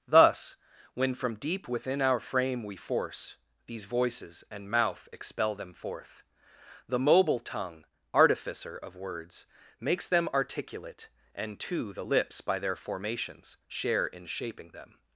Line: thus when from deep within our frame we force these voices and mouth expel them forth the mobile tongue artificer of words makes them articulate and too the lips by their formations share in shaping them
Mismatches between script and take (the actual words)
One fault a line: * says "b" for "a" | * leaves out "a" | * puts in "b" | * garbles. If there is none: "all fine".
all fine